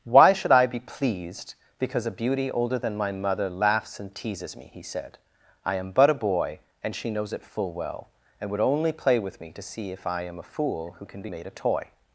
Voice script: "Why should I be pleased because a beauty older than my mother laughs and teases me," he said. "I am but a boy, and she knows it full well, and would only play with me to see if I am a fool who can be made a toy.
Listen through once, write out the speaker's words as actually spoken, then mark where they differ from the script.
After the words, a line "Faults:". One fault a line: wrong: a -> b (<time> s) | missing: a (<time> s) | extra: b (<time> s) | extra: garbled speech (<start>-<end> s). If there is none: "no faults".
"Why should I be pleased because a beauty older than my mother laughs and teases me," he said. "I am but a boy, and she knows it full well, and would only play with me to see if I am a fool who can be made a toy.
Faults:
no faults